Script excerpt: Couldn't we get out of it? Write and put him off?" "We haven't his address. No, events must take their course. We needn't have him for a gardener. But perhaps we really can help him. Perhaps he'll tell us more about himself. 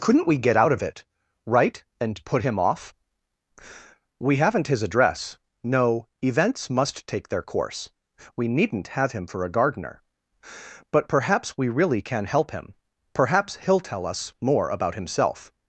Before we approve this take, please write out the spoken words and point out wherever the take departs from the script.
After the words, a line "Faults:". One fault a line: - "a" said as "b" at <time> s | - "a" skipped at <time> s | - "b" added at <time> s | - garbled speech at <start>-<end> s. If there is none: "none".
Couldn't we get out of it? Write and put him off?" "We haven't his address. No, events must take their course. We needn't have him for a gardener. But perhaps we really can help him. Perhaps he'll tell us more about himself.
Faults:
none